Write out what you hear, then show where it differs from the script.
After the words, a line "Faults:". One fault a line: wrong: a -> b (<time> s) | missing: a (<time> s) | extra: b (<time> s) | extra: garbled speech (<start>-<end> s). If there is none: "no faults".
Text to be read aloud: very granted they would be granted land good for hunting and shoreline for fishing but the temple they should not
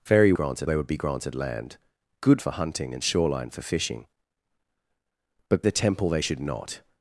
very granted they would be granted land good for hunting and shoreline for fishing but the temple they should not
Faults:
no faults